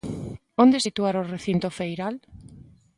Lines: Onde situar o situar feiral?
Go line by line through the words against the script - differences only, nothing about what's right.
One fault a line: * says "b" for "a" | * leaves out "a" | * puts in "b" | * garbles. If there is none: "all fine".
* says "recinto" for "situar"